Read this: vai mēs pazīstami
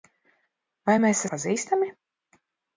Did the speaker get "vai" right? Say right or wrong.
right